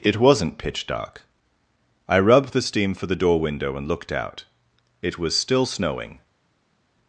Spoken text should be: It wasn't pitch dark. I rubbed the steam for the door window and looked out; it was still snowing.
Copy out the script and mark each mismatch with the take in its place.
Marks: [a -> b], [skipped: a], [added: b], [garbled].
It wasn't pitch dark. I rubbed the steam for the door window and looked out; it was still snowing.